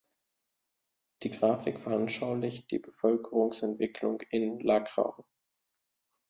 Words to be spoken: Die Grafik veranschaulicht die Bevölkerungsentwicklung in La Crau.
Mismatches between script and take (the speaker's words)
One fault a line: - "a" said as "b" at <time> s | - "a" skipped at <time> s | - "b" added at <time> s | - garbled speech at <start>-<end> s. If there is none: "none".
none